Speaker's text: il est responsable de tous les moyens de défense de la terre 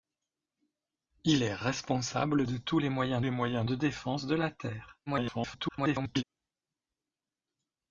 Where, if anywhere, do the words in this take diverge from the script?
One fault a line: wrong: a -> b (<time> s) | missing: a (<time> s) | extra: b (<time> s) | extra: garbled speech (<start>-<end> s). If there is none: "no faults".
extra: les moyens (3.2 s)
extra: garbled speech (5.1-6.2 s)